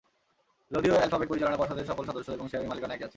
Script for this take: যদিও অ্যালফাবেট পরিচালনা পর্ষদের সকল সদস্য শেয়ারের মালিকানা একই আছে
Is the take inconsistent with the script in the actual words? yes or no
yes